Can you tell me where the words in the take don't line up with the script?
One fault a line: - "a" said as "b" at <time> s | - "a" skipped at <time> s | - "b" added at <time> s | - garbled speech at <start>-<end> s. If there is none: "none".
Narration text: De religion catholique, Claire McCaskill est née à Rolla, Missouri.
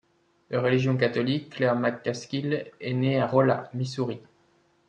none